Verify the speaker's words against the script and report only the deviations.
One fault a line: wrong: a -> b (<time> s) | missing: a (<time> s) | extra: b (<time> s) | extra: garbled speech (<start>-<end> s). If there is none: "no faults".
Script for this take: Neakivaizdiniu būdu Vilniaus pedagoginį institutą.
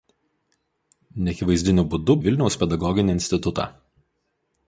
no faults